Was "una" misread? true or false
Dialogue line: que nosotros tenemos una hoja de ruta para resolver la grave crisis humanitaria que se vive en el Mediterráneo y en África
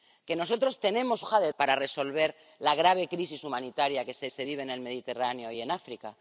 true